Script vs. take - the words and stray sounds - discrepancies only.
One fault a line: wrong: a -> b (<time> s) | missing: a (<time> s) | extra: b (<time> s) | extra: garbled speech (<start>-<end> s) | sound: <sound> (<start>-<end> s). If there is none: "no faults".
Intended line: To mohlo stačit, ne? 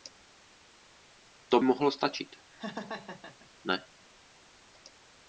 sound: laugh (2.5-3.5 s)